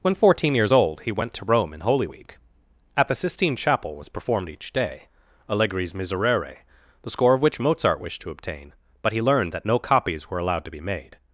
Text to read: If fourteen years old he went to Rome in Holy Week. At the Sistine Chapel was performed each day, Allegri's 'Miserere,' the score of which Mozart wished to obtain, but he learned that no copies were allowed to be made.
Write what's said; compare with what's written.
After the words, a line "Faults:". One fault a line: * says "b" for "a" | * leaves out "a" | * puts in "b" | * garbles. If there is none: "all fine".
When fourteen years old he went to Rome in Holy Week. At the Sistine Chapel was performed each day, Allegri's 'Miserere,' the score of which Mozart wished to obtain, but he learned that no copies were allowed to be made.
Faults:
* says "When" for "If"